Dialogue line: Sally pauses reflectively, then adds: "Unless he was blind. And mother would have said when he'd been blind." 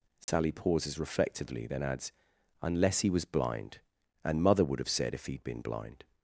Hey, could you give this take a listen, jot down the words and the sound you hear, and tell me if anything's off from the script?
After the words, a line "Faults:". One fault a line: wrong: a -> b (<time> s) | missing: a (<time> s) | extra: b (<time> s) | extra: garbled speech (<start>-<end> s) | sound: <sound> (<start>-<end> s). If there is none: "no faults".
Sally pauses reflectively, then adds: "Unless he was blind. And mother would have said if he'd been blind."
Faults:
sound: dropout (0.2-0.3 s)
wrong: when -> if (5.1 s)